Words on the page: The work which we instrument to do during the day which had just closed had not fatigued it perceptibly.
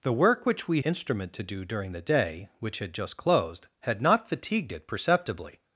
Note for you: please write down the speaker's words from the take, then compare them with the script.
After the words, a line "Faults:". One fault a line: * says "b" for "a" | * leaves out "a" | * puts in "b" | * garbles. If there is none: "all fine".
The work which we instrument to do during the day which had just closed had not fatigued it perceptibly.
Faults:
all fine